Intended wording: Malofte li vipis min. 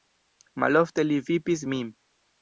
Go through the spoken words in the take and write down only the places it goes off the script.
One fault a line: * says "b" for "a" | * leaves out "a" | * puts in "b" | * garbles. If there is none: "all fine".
all fine